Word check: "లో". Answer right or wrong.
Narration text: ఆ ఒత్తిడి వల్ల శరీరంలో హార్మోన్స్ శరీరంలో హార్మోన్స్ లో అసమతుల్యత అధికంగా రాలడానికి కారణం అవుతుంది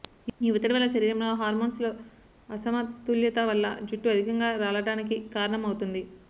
wrong